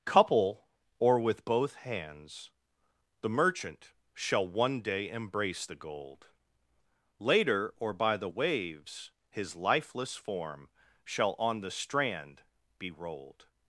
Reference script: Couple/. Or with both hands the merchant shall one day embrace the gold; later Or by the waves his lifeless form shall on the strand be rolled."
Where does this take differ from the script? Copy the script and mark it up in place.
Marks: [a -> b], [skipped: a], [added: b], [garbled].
Couple/. Or with both hands the merchant shall one day embrace the gold; later Or by the waves his lifeless form shall on the strand be rolled."